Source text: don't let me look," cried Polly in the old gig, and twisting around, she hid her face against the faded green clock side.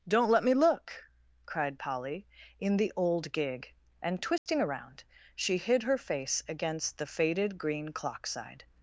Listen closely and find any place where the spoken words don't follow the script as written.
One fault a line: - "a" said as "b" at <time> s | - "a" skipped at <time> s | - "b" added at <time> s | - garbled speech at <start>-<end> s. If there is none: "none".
none